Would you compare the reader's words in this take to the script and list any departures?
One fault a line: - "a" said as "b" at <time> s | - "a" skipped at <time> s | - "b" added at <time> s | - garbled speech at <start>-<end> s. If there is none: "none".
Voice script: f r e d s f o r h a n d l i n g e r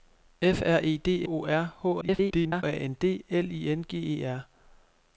- "s f" skipped at 1.3 s
- garbled speech at 2.0-2.6 s